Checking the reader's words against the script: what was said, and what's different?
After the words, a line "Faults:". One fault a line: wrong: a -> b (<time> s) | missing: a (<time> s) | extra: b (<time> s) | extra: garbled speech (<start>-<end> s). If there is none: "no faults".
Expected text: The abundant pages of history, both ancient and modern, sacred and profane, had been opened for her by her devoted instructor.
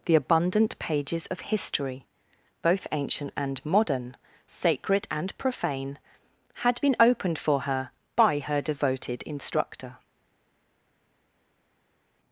The abundant pages of history, both ancient and modern, sacred and profane, had been opened for her by her devoted instructor.
Faults:
no faults